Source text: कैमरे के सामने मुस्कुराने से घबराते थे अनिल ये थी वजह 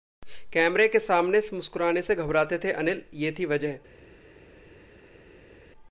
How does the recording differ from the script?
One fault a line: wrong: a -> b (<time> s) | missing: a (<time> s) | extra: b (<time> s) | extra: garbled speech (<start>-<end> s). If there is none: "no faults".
no faults